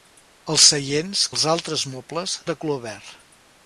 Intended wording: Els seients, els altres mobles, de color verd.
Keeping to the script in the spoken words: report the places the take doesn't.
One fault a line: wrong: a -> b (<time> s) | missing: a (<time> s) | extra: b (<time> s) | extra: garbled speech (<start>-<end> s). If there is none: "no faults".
no faults